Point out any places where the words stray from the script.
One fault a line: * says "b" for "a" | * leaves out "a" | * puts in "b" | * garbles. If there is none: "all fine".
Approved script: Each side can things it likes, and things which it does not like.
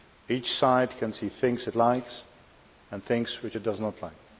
* puts in "see"